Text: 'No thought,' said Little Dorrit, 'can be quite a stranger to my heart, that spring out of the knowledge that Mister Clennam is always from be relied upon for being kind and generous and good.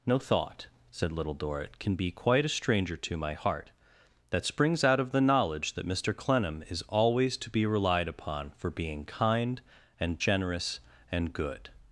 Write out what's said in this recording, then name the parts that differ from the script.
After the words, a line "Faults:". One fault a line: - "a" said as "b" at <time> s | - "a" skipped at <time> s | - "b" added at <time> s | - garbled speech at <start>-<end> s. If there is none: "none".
'No thought,' said Little Dorrit, 'can be quite a stranger to my heart, that springs out of the knowledge that Mister Clennam is always to be relied upon for being kind and generous and good.
Faults:
- "spring" said as "springs" at 4.5 s
- "from" said as "to" at 7.4 s